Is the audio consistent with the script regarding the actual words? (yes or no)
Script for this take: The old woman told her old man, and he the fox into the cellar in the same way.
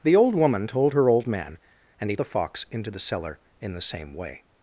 yes